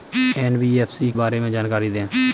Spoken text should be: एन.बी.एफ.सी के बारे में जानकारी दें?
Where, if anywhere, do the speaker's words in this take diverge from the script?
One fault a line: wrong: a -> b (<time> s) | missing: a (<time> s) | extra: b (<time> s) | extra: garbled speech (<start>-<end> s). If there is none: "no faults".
missing: के (1.1 s)